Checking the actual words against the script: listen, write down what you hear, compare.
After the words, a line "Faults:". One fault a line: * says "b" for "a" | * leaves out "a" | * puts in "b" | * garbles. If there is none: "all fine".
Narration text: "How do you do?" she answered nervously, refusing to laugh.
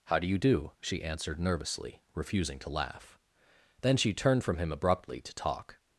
"How do you do?" she answered nervously, refusing to laugh. Then she turned from him abruptly to talk
Faults:
* puts in "Then she turned from him abruptly to talk"